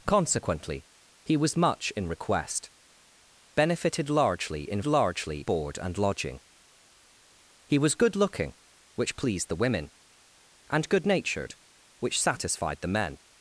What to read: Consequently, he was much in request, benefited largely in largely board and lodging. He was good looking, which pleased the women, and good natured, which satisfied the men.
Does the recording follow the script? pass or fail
pass